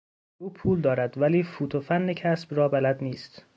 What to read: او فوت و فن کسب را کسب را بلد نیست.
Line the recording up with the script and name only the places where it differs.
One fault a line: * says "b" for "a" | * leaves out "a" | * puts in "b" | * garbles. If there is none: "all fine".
* puts in "پول دارد ولی"
* leaves out "کسب را"